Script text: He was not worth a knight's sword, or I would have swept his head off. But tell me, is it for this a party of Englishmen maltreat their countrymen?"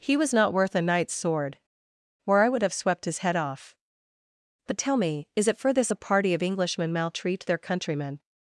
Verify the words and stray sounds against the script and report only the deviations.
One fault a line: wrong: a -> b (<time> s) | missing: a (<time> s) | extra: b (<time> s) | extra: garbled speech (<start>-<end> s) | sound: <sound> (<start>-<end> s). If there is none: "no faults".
no faults